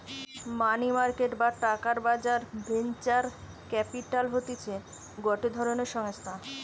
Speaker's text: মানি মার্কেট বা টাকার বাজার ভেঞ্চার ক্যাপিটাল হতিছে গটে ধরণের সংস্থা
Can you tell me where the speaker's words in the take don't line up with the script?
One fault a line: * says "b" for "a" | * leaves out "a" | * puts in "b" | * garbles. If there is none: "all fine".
all fine